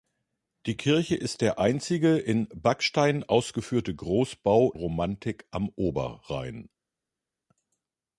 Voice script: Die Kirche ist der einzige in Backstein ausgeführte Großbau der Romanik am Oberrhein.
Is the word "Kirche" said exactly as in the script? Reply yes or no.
yes